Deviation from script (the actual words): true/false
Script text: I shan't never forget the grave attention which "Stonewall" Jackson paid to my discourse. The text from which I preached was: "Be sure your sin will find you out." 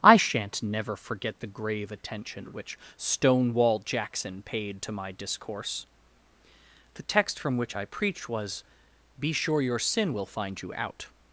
false